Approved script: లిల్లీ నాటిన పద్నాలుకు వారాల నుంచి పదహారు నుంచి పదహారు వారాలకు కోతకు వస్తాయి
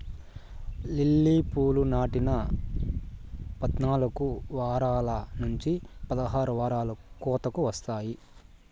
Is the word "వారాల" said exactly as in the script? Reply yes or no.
yes